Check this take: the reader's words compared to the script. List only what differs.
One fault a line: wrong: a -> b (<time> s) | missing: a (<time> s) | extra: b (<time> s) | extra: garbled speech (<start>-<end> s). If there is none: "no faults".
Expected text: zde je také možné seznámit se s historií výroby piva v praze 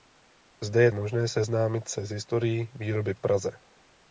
missing: také (0.9 s)
missing: piva (3.1 s)